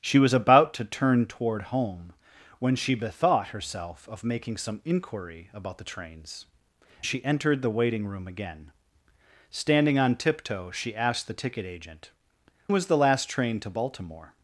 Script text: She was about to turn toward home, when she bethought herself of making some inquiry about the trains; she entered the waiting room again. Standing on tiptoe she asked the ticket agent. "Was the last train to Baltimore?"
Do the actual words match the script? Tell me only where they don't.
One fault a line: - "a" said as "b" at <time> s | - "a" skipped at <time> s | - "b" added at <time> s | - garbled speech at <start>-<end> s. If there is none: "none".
none